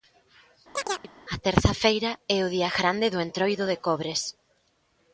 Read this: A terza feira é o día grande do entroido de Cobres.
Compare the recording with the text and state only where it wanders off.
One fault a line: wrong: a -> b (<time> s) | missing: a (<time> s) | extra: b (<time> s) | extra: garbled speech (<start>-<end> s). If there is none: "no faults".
no faults